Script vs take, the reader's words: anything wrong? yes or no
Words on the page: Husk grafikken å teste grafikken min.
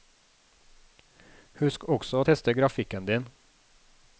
yes